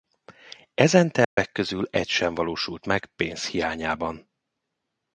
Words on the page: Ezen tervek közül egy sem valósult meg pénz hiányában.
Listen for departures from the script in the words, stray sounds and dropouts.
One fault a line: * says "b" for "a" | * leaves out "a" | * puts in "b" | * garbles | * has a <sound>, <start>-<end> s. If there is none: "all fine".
* has a dropout, 1.2-1.4 s